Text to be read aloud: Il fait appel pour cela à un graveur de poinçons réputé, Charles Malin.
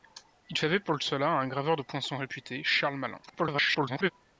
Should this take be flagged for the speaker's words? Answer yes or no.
yes